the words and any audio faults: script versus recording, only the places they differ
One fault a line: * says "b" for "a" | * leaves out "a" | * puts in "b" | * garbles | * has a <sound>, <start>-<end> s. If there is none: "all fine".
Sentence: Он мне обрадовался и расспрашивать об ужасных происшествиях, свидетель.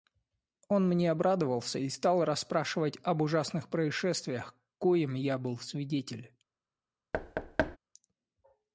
* puts in "стал"
* puts in "коим я был"
* has a thud, 7.1-7.8 s